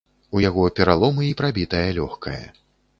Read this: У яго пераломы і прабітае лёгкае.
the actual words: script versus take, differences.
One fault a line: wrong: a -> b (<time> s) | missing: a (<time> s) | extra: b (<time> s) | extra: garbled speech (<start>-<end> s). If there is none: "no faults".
no faults